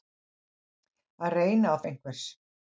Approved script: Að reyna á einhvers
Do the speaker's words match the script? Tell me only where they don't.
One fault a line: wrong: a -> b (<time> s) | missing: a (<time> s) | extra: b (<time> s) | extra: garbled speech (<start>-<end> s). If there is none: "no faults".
no faults